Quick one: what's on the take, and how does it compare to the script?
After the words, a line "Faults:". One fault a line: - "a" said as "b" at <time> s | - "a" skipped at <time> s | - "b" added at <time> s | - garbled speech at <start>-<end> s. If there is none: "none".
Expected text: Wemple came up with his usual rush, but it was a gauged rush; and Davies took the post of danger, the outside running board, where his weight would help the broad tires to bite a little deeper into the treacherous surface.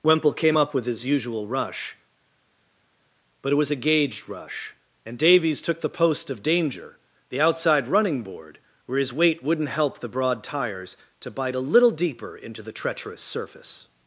Wemple came up with his usual rush, but it was a gauged rush; and Davies took the post of danger, the outside running board, where his weight wouldn't help the broad tires to bite a little deeper into the treacherous surface.
Faults:
- "would" said as "wouldn't" at 9.4 s